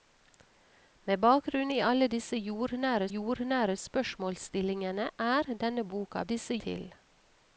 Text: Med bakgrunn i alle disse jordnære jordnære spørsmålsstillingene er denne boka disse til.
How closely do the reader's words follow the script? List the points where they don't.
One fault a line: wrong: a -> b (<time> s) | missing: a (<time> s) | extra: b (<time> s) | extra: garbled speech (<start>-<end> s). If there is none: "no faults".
no faults